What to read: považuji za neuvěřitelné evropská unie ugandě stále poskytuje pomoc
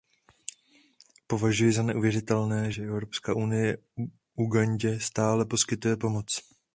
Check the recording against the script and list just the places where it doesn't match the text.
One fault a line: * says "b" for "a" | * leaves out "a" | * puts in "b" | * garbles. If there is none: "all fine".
* puts in "že"